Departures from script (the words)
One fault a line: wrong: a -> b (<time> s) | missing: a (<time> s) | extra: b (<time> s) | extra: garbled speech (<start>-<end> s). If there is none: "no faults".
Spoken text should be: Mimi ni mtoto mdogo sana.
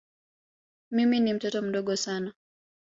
no faults